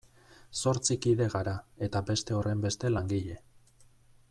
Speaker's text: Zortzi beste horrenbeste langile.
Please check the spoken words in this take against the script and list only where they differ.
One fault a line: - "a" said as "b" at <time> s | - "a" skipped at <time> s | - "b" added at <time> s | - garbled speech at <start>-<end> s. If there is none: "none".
- "kide gara eta" added at 1.1 s